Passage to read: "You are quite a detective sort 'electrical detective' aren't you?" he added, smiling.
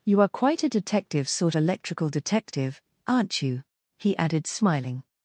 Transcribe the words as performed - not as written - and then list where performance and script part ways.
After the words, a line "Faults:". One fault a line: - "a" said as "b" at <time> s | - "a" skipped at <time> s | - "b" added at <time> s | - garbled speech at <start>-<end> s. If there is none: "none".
"You are quite a detective sort 'electrical detective' aren't you?" he added, smiling.
Faults:
none